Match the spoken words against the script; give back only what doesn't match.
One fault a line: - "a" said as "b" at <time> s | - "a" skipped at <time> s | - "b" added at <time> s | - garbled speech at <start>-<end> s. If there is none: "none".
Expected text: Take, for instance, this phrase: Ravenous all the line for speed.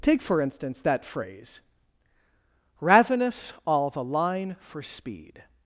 - "this" said as "that" at 0.8 s